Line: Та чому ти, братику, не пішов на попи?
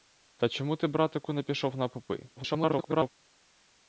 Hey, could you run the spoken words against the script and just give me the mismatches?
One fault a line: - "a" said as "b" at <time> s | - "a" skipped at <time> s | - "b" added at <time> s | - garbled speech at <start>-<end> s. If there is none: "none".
- garbled speech at 2.4-3.1 s